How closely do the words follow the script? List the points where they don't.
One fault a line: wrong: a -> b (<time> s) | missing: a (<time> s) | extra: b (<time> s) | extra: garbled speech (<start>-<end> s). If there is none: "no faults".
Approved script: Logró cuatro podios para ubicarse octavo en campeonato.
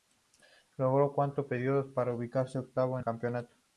no faults